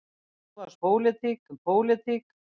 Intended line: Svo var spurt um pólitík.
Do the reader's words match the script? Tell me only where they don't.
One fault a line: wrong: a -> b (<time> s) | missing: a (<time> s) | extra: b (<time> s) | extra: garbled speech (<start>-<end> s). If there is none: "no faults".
wrong: spurt -> pólitík (0.8 s)